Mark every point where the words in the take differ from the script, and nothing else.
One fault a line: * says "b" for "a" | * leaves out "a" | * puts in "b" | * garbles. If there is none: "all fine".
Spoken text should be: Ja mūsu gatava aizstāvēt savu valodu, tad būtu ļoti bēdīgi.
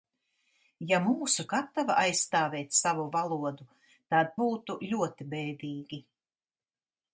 all fine